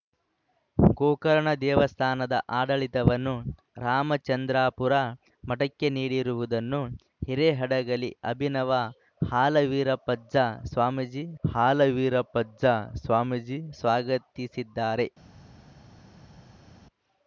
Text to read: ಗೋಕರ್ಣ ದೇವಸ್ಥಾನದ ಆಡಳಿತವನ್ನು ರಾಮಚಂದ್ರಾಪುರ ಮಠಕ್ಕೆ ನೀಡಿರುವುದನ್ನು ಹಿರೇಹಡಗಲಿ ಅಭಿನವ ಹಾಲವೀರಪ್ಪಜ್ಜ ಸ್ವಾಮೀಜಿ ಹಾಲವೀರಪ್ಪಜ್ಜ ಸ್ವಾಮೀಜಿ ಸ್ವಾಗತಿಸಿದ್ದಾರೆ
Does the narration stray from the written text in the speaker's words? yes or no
no